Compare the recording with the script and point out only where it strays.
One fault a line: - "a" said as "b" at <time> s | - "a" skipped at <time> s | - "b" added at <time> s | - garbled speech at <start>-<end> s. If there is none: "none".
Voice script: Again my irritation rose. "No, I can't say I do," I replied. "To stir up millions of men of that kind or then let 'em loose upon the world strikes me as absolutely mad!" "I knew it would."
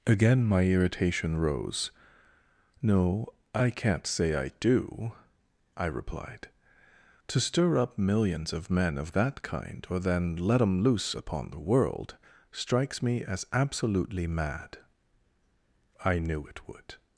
none